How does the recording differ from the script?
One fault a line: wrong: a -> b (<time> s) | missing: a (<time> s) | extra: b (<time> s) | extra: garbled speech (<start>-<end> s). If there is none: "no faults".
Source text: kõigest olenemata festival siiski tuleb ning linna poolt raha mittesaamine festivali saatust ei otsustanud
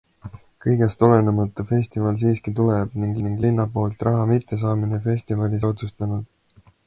extra: ning (3.3 s)
missing: saatust (5.7 s)